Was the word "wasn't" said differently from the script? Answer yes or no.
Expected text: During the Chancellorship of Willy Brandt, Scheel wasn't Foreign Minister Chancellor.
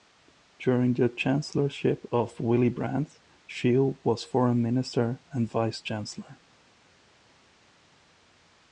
yes